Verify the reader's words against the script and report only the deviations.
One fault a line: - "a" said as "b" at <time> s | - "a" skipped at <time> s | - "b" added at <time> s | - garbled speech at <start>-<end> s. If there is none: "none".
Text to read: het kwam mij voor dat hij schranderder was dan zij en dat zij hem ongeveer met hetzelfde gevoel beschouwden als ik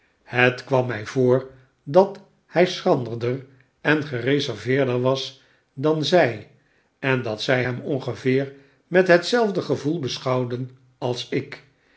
- "en gereserveerder" added at 3.8 s